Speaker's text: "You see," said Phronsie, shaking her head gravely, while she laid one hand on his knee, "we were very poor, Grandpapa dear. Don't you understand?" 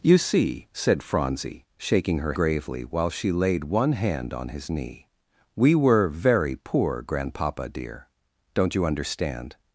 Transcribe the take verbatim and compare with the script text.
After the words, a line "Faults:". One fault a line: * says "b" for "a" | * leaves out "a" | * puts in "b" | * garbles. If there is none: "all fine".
"You see," said Phronsie, shaking her gravely, while she laid one hand on his knee, "we were very poor, Grandpapa dear. Don't you understand?"
Faults:
* leaves out "head"